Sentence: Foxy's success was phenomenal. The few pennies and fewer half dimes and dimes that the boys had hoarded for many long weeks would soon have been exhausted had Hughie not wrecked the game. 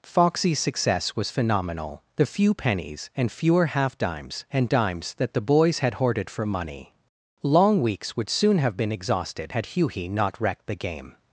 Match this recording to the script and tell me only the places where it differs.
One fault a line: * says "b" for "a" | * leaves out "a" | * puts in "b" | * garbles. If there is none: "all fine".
* says "money" for "many"